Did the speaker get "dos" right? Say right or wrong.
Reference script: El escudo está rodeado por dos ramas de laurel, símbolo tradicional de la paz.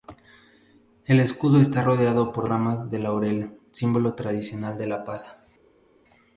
wrong